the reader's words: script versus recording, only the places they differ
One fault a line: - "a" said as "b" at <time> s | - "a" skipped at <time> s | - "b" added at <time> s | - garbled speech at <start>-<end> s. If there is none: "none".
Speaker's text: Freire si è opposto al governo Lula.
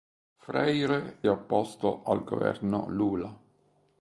- "si" skipped at 1.2 s